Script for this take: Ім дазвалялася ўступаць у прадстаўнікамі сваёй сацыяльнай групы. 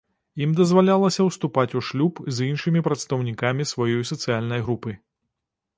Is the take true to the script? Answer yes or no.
no